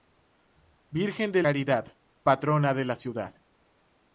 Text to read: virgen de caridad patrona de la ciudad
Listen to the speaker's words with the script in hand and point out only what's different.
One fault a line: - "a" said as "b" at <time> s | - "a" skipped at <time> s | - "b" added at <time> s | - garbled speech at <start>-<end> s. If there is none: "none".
none